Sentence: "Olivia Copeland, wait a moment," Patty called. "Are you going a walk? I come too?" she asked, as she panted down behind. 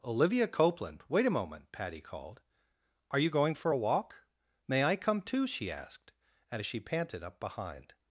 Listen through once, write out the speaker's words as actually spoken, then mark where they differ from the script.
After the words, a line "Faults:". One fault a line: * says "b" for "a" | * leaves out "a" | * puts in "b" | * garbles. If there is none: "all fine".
"Olivia Copeland, wait a moment," Patty called. "Are you going for a walk? May I come too?" she asked, as she panted up behind.
Faults:
* puts in "for"
* puts in "May"
* says "up" for "down"